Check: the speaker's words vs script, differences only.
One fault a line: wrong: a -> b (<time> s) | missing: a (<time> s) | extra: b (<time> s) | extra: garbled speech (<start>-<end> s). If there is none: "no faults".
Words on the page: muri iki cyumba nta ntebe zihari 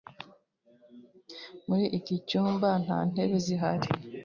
no faults